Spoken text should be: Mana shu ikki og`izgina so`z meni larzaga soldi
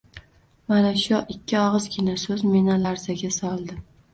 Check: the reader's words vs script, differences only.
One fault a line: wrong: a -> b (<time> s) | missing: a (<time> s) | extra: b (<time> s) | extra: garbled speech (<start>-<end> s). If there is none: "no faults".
no faults